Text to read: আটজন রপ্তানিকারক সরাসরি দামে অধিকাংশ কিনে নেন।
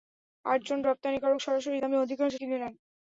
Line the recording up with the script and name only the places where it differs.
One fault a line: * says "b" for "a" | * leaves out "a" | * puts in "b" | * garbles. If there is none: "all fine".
all fine